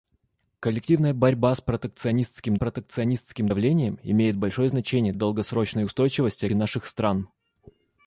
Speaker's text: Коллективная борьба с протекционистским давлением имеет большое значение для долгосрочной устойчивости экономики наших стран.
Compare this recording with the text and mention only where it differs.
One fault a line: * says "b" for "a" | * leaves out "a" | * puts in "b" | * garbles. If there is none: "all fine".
* puts in "протекционистским"
* leaves out "для"
* leaves out "экономики"